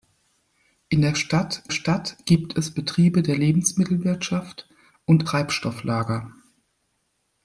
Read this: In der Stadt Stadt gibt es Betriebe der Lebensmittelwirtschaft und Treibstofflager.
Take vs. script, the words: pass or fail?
pass